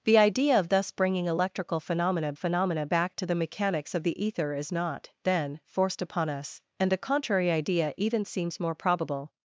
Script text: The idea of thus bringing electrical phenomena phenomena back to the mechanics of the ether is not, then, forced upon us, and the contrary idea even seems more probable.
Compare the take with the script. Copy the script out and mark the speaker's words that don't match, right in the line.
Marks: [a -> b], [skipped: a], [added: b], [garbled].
The idea of thus bringing electrical phenomena phenomena back to the mechanics of the ether is not, then, forced upon us, and the contrary idea even seems more probable.